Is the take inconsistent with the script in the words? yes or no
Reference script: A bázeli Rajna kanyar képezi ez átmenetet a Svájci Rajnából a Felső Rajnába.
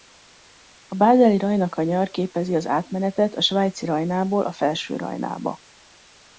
yes